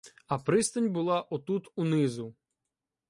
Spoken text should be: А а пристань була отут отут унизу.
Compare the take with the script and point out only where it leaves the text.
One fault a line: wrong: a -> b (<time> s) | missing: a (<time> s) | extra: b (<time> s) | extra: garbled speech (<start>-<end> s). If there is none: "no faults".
missing: а (0.4 s)
missing: отут (1.7 s)